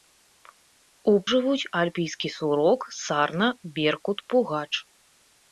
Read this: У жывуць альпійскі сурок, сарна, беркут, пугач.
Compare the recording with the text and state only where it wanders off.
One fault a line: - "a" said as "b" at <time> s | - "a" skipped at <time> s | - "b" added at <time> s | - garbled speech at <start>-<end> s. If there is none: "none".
none